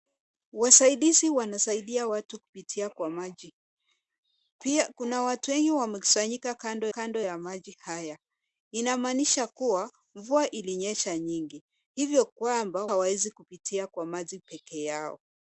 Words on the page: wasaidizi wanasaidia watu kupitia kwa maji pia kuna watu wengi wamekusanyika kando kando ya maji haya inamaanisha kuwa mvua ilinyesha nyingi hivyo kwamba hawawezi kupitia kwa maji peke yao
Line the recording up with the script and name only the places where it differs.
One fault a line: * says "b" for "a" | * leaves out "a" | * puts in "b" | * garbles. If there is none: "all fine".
all fine